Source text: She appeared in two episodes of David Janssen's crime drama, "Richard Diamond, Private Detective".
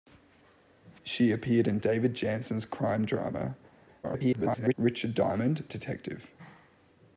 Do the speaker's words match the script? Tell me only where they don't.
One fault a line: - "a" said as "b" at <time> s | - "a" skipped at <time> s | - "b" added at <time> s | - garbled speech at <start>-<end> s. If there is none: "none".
- "two episodes of" skipped at 1.8 s
- garbled speech at 4.0-4.7 s
- "Private" skipped at 5.6 s